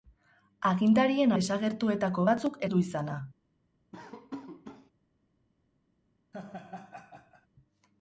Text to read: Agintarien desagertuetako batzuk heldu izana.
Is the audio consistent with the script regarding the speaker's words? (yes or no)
yes